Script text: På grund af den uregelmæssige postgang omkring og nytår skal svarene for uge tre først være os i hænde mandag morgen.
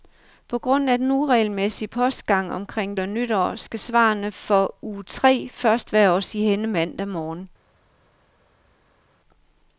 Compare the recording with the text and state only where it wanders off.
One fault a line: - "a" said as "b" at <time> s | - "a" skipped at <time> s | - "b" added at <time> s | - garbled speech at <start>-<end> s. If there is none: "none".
none